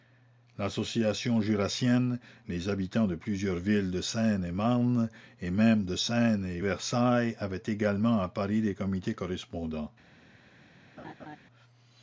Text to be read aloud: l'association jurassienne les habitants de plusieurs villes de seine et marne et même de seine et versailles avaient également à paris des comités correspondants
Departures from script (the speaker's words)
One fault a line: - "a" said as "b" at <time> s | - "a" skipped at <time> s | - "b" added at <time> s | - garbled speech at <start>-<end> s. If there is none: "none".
none